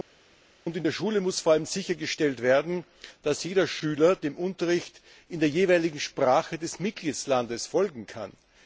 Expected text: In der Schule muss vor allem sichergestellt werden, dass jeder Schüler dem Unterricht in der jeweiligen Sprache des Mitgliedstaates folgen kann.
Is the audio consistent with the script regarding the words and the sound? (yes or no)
yes